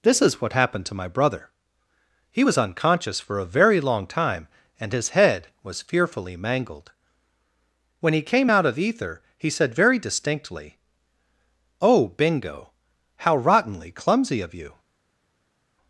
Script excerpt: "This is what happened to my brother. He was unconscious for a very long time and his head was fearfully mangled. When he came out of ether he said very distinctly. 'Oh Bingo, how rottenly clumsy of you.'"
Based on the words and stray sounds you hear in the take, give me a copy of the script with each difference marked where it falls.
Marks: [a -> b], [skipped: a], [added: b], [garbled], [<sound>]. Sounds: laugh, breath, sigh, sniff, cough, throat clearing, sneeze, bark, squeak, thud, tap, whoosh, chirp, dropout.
"This is what happened to my brother. He was unconscious for a very long time and his head was fearfully mangled. When he came out of ether he said very distinctly. 'Oh Bingo, how rottenly clumsy of you.'"